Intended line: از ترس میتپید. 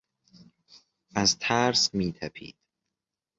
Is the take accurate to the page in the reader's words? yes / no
yes